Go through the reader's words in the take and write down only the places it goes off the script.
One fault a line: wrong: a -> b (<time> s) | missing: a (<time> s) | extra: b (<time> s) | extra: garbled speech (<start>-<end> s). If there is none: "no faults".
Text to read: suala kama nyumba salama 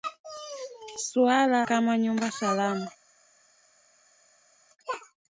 no faults